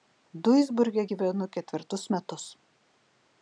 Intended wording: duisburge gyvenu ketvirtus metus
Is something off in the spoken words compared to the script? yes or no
no